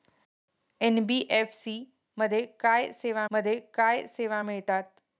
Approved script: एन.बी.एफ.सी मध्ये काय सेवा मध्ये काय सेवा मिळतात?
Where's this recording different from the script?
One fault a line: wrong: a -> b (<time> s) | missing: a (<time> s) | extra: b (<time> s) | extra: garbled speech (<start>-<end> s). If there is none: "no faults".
no faults